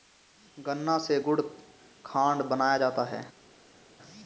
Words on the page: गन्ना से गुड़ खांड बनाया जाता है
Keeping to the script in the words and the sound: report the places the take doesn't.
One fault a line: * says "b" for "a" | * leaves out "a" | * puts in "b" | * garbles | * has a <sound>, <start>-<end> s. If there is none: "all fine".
all fine